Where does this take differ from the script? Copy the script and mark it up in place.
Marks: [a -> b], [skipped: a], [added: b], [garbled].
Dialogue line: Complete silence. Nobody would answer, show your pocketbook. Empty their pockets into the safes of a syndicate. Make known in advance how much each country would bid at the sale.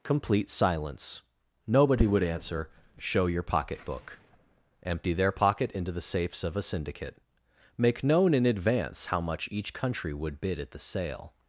Complete silence. Nobody would answer, show your pocketbook. Empty their [pockets -> pocket] into the safes of a syndicate. Make known in advance how much each country would bid at the sale.